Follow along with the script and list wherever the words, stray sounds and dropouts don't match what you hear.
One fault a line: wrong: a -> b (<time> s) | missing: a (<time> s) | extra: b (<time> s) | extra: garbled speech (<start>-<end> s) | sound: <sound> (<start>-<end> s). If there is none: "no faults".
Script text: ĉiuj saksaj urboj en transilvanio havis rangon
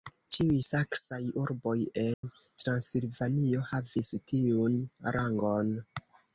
sound: dropout (2.1-2.2 s)
extra: tiun (4.3 s)